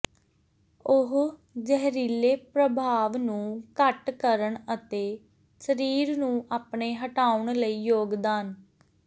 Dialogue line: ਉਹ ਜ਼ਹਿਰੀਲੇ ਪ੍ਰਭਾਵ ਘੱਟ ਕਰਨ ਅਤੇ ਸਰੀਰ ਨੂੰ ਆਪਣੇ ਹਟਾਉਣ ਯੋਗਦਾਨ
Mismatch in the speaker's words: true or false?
true